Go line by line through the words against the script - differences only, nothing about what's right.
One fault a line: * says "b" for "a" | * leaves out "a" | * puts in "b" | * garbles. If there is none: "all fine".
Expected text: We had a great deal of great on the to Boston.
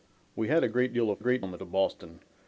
all fine